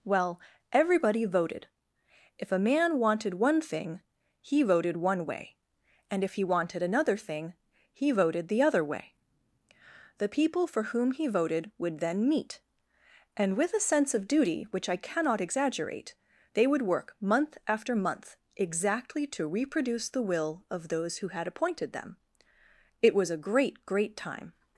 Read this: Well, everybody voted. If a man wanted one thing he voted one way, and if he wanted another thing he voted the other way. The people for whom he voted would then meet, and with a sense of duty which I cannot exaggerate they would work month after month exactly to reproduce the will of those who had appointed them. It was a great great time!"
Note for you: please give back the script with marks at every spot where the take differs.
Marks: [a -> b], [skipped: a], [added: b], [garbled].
Well, everybody voted. If a man wanted one thing he voted one way, and if he wanted another thing he voted the other way. The people for whom he voted would then meet, and with a sense of duty which I cannot exaggerate they would work month after month exactly to reproduce the will of those who had appointed them. It was a great great time!"